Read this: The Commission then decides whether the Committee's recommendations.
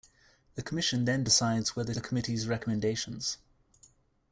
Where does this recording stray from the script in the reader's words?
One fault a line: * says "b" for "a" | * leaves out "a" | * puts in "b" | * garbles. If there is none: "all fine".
all fine